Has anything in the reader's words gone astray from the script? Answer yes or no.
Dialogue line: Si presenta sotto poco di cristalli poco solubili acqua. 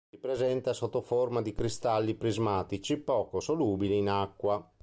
yes